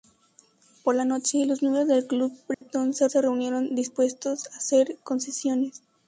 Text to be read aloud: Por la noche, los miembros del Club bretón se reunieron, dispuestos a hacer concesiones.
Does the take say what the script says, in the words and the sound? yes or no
no